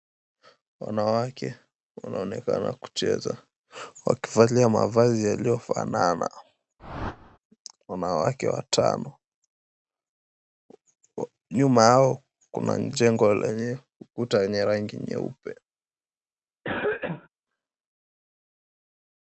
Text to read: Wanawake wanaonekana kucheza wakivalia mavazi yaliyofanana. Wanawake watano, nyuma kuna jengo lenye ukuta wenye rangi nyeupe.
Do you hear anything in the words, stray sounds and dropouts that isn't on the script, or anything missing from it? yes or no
yes